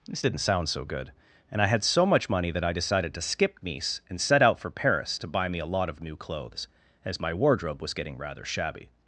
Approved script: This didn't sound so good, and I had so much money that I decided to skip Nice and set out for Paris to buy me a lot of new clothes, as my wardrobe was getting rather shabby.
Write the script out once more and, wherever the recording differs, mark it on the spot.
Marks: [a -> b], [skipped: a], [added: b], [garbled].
This didn't sound so good, and I had so much money that I decided to skip Nice and set out for Paris to buy me a lot of new clothes, as my wardrobe was getting rather shabby.